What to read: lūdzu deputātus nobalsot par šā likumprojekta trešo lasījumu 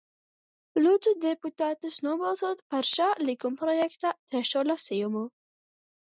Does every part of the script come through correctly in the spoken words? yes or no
yes